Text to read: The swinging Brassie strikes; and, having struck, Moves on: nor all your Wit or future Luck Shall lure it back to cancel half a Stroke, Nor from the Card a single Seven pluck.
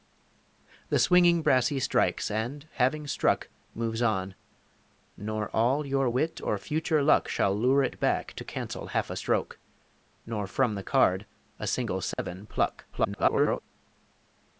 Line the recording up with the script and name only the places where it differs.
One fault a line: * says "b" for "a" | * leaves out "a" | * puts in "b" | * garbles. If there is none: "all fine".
* garbles